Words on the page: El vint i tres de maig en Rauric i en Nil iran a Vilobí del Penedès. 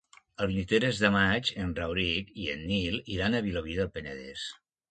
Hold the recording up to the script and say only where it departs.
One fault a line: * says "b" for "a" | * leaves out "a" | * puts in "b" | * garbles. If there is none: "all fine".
all fine